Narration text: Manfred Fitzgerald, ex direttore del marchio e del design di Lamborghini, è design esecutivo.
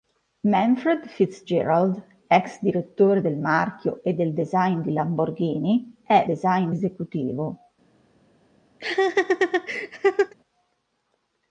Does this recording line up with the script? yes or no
yes